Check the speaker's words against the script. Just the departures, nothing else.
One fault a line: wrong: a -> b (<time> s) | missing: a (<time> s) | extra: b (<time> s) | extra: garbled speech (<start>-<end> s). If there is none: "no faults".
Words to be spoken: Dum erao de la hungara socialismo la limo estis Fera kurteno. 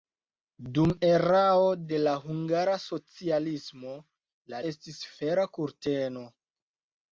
missing: limo (4.6 s)